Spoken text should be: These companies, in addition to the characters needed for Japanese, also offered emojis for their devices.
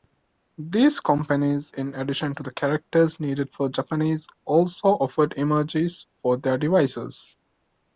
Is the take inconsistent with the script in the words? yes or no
no